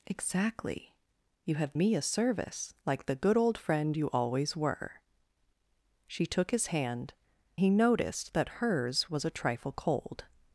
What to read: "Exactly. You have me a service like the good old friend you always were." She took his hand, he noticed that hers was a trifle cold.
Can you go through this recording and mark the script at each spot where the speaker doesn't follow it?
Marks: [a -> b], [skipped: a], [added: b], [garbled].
"Exactly. You have me a service like the good old friend you always were." She took his hand, he noticed that hers was a trifle cold.